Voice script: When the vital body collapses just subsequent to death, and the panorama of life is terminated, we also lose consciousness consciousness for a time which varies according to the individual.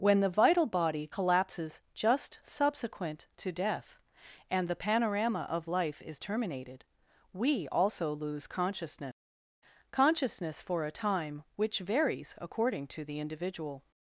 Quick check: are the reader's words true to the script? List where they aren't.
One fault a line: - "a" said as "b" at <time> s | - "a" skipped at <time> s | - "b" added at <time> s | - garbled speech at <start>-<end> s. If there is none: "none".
none